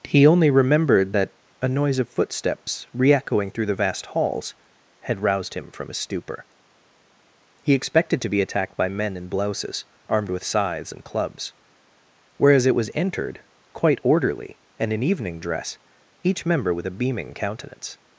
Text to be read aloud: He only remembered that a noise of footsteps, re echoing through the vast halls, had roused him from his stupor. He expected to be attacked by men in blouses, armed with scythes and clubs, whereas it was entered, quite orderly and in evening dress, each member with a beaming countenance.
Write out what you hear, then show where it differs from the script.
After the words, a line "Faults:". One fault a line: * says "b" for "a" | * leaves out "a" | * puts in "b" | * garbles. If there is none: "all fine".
He only remembered that a noise of footsteps, re echoing through the vast halls, had roused him from his stupor. He expected to be attacked by men in blouses, armed with scythes and clubs, whereas it was entered, quite orderly and in evening dress, each member with a beaming countenance.
Faults:
all fine